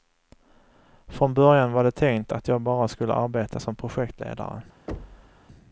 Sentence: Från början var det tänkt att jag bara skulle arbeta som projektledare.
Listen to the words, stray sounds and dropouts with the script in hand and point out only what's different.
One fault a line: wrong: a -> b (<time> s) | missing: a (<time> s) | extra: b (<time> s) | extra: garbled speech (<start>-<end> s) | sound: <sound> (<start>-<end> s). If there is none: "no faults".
sound: thud (4.9-5.4 s)